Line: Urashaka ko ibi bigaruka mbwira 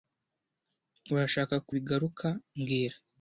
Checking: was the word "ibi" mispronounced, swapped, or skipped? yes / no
yes